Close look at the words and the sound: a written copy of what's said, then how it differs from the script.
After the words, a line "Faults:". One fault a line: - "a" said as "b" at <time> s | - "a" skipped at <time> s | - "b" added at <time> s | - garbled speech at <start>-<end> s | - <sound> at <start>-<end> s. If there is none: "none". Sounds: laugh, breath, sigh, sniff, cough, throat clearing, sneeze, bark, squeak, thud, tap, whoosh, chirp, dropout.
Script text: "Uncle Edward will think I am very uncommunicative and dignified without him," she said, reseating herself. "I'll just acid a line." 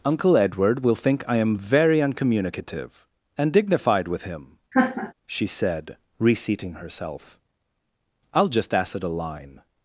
"Uncle Edward will think I am very uncommunicative and dignified with him," she said, reseating herself. "I'll just acid a line."
Faults:
- "without" said as "with" at 4.1 s
- laugh at 4.7-5.1 s